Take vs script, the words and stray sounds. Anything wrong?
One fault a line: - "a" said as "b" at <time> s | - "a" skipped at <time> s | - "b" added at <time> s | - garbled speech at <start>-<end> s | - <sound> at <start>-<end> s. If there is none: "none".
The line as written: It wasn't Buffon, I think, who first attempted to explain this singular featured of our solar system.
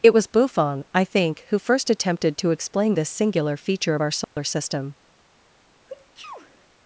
- "wasn't" said as "was" at 0.1 s
- "featured" said as "feature" at 3.5 s
- dropout at 4.2-4.4 s
- sneeze at 5.9-6.7 s